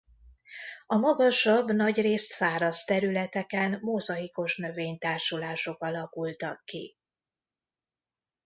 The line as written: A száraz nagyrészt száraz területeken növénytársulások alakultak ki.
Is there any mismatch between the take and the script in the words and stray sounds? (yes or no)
yes